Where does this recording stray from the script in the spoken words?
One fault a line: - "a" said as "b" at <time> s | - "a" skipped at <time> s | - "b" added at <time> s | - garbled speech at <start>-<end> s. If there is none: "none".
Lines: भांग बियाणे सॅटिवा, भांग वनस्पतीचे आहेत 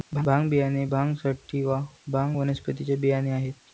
- "भांग" added at 0.8 s
- "बियाणे" added at 3.0 s